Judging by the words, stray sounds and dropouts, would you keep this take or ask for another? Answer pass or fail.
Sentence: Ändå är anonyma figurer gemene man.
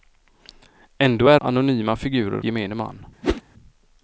fail